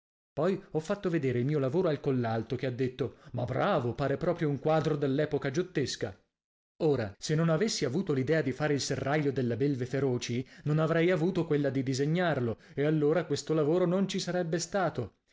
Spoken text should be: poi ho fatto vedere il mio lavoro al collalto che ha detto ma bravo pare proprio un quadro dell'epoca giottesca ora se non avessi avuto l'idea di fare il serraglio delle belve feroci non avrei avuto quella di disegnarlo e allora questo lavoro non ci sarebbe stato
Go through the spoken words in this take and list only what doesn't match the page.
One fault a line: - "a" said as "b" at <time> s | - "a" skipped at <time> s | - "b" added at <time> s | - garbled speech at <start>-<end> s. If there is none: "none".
none